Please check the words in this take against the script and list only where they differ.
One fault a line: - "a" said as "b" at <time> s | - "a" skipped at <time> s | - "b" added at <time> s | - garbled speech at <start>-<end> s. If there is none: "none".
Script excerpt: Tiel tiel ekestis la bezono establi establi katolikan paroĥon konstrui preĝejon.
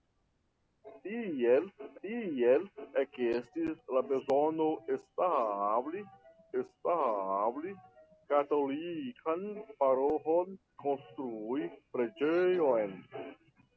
none